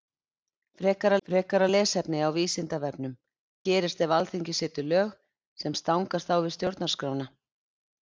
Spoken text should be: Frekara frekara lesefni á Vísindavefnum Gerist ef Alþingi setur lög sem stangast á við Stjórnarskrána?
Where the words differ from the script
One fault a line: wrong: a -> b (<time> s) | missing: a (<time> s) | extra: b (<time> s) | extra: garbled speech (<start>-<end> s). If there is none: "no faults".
no faults